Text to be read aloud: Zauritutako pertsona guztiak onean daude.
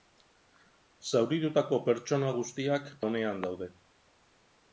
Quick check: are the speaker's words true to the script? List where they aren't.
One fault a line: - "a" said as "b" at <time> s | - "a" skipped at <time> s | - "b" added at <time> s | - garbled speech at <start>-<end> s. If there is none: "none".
none